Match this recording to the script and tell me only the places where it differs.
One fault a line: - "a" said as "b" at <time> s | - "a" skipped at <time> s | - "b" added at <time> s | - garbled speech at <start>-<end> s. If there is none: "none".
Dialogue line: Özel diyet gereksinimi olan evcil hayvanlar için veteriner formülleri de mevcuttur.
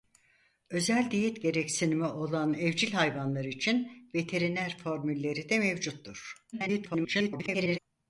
- garbled speech at 6.5-7.8 s